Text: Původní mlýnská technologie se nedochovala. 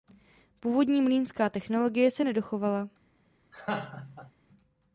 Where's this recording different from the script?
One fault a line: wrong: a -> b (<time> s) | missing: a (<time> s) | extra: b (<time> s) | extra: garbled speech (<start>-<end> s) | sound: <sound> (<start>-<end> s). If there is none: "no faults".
sound: laugh (3.5-4.3 s)